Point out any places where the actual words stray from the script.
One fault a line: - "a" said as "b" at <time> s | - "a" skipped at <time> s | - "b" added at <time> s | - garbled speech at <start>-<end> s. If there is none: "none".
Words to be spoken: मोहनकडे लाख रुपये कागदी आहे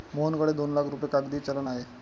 - "दोन" added at 0.5 s
- "चलन" added at 1.4 s